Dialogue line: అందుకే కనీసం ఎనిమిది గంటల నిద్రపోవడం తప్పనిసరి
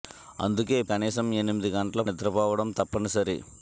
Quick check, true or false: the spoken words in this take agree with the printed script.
true